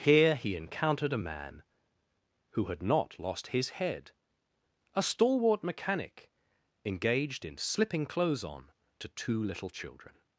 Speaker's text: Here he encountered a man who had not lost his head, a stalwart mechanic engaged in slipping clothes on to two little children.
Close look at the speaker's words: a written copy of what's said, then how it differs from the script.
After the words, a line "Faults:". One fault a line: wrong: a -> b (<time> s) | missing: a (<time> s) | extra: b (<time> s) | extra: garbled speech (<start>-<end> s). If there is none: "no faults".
Here he encountered a man who had not lost his head, a stalwart mechanic engaged in slipping clothes on to two little children.
Faults:
no faults